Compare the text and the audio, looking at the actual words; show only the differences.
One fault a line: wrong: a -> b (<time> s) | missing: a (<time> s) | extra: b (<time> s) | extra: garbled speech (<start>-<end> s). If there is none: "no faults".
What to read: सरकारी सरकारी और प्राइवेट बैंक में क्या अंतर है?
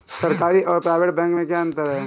missing: सरकारी (0.6 s)